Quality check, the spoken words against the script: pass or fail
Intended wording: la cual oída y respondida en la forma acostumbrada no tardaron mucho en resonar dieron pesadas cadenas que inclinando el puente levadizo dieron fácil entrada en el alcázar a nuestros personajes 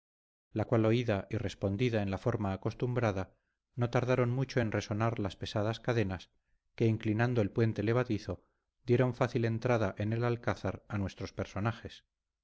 fail